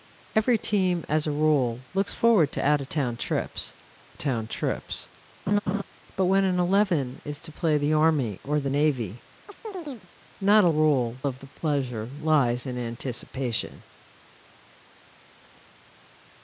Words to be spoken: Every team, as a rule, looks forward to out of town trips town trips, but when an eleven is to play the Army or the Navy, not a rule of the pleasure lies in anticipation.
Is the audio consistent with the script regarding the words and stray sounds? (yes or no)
no